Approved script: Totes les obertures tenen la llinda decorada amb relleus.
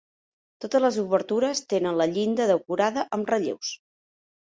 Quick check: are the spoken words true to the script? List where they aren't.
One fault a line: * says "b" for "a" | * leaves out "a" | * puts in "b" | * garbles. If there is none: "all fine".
all fine